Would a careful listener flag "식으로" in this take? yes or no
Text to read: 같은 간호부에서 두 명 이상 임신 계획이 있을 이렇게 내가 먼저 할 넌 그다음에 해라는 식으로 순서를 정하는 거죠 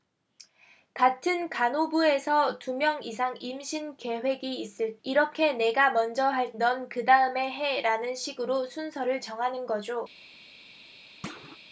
no